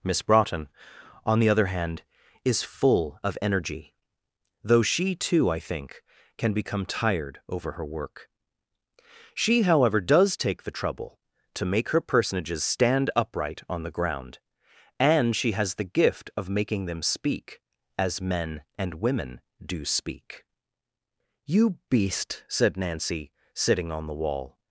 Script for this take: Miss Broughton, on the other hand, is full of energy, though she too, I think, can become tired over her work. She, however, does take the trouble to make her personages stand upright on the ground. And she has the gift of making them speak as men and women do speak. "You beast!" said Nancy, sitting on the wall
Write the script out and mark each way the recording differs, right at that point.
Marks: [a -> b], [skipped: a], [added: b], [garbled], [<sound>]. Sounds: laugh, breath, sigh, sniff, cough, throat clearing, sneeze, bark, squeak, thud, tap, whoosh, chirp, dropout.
Miss Broughton, on the other hand, is full of energy, though she too, I think, can become tired over her work. She, however, does take the trouble to make her personages stand upright on the ground. And she has the gift of making them speak as men and women do speak. "You beast!" said Nancy, sitting on the wall